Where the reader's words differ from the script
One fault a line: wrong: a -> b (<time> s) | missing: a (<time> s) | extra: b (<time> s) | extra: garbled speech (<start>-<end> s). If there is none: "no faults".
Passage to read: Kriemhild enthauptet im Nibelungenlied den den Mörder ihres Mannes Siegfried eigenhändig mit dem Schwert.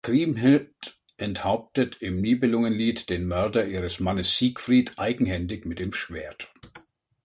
missing: den (3.3 s)